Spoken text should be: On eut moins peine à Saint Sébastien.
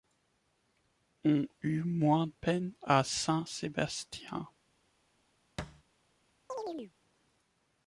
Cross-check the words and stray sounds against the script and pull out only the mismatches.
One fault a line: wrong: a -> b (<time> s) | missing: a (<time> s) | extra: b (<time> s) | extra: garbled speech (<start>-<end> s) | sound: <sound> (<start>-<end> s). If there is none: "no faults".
sound: thud (5.6-5.8 s)
sound: chirp (6.5-6.9 s)